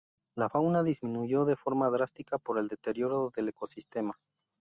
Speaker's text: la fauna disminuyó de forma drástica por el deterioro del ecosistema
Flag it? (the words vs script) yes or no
no